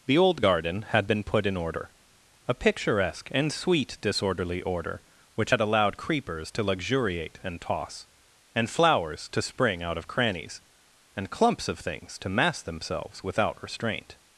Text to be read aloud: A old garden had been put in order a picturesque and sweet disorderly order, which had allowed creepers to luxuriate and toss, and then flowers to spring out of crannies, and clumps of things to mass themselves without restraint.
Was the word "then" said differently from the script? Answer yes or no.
yes